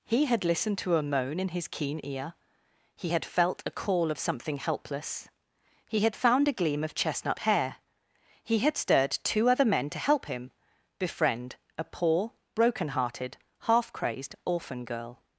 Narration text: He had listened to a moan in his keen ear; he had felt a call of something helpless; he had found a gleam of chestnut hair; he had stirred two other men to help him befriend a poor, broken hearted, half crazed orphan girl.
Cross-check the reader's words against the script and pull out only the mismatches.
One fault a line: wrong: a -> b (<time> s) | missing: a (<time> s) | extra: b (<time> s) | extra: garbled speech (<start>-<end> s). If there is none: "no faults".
no faults